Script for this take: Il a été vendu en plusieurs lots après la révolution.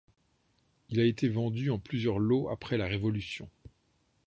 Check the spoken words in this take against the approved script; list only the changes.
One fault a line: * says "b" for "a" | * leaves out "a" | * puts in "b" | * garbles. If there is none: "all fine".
all fine